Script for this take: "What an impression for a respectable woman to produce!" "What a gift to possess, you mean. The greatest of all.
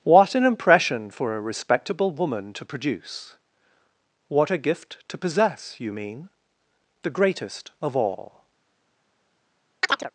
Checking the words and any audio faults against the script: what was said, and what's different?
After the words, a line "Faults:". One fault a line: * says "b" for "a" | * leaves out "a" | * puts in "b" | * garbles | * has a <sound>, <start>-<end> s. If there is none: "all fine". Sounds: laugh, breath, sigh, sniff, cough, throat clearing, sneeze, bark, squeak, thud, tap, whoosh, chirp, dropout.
"What an impression for a respectable woman to produce!" "What a gift to possess, you mean. The greatest of all.
Faults:
* has a chirp, 9.8-10.1 s